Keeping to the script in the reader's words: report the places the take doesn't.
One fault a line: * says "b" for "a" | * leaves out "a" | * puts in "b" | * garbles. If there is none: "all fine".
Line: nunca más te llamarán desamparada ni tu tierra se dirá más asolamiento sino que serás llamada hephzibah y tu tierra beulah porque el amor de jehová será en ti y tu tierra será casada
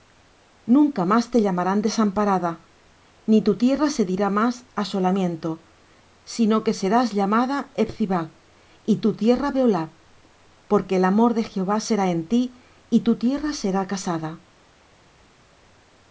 all fine